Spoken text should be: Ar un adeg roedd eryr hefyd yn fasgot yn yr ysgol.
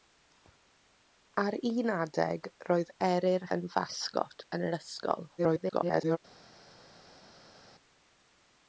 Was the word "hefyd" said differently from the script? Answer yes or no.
yes